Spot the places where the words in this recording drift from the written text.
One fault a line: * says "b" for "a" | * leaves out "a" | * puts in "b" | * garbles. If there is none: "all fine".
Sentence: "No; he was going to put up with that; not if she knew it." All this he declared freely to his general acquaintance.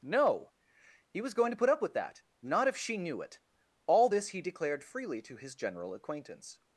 all fine